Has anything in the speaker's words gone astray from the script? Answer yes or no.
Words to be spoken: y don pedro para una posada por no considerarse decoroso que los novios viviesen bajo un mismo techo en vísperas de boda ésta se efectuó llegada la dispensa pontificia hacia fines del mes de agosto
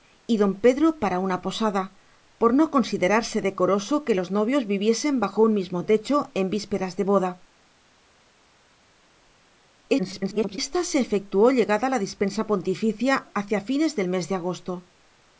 yes